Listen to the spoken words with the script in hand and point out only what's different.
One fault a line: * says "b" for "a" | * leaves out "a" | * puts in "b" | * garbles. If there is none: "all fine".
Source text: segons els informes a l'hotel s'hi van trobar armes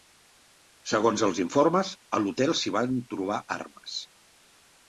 all fine